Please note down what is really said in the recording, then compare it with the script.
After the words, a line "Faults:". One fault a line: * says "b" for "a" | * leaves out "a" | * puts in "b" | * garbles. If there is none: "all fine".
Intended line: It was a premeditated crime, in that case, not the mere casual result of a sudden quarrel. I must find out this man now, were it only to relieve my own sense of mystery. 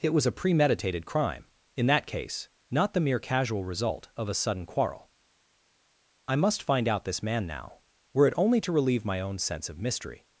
It was a premeditated crime, in that case, not the mere casual result of a sudden quarrel. I must find out this man now, were it only to relieve my own sense of mystery.
Faults:
all fine